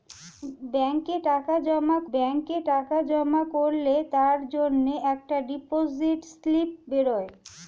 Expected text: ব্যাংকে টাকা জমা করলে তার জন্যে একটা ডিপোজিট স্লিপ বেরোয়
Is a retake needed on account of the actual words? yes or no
yes